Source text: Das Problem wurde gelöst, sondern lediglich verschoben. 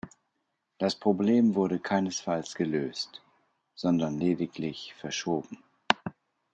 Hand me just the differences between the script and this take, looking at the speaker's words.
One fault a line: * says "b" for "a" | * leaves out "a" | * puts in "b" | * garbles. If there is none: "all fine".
* puts in "keinesfalls"